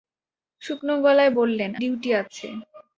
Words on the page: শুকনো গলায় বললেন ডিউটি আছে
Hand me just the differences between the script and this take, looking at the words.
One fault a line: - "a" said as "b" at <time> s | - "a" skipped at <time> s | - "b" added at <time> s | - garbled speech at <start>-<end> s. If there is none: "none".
none